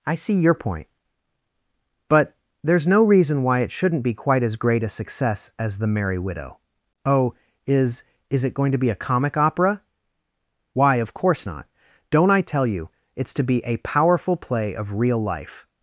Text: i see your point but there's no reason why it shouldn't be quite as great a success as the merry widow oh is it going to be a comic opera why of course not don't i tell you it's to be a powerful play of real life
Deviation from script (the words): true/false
true